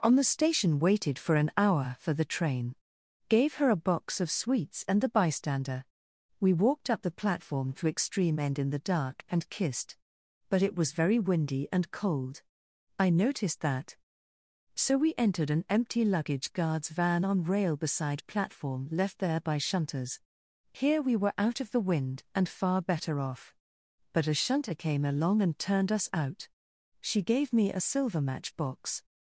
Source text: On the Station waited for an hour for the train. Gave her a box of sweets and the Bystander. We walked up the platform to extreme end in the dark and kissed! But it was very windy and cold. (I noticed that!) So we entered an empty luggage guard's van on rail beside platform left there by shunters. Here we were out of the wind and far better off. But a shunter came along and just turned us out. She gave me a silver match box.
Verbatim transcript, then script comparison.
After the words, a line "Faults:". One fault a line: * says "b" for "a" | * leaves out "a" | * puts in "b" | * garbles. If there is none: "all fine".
On the Station waited for an hour for the train. Gave her a box of sweets and the Bystander. We walked up the platform to extreme end in the dark and kissed! But it was very windy and cold. (I noticed that!) So we entered an empty luggage guard's van on rail beside platform left there by shunters. Here we were out of the wind and far better off. But a shunter came along and turned us out. She gave me a silver match box.
Faults:
* leaves out "just"